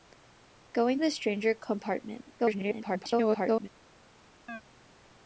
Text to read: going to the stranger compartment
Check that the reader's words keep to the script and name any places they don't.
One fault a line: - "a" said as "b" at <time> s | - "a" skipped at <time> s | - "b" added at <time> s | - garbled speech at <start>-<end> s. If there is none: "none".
- "to" skipped at 1.0 s
- garbled speech at 2.4-3.7 s